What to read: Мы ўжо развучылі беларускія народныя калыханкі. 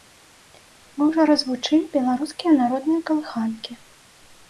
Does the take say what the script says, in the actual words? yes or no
yes